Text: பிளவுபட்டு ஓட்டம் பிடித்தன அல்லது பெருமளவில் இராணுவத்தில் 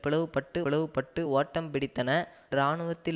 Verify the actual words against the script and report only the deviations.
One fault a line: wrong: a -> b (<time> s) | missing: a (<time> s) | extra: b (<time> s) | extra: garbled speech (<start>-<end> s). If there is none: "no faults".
extra: பிளவுபட்டு (0.6 s)
missing: அல்லது பெருமளவில் (2.1 s)